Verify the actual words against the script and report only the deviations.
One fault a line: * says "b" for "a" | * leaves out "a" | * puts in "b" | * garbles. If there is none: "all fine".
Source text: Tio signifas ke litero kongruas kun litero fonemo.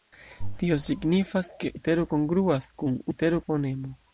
all fine